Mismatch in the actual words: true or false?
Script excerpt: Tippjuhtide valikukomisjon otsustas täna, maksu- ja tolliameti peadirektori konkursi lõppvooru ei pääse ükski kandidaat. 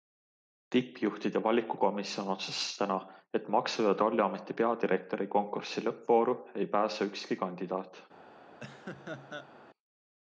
true